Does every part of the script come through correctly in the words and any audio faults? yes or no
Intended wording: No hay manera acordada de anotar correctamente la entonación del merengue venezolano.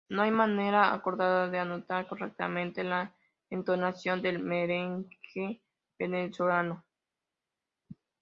yes